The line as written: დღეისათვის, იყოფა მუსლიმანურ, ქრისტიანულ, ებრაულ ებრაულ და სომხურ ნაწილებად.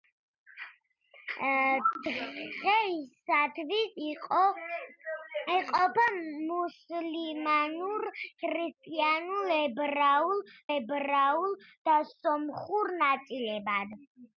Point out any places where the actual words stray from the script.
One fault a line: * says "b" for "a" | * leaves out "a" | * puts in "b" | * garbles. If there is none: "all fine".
all fine